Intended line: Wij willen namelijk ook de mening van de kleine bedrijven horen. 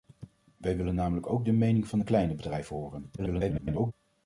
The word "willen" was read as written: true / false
true